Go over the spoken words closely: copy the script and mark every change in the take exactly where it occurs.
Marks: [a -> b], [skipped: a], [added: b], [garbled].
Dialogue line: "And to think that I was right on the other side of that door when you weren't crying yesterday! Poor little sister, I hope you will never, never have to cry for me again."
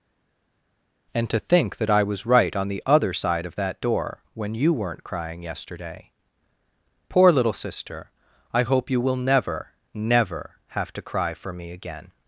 "And to think that I was right on the other side of that door when you weren't crying yesterday! Poor little sister, I hope you will never, never have to cry for me again."